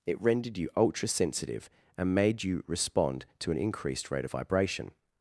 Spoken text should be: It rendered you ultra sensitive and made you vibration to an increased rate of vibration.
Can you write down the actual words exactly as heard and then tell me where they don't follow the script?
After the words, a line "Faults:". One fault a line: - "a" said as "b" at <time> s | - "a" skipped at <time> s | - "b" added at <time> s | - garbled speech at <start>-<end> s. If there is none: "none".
It rendered you ultra sensitive and made you respond to an increased rate of vibration.
Faults:
- "vibration" said as "respond" at 2.7 s